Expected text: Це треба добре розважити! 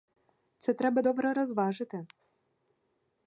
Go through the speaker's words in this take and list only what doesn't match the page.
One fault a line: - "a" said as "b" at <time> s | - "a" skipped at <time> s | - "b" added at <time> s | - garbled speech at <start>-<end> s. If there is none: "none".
none